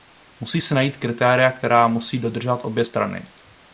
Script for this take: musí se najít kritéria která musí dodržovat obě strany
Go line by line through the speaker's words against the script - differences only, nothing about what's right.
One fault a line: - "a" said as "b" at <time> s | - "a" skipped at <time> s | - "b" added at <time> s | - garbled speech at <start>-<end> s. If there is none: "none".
none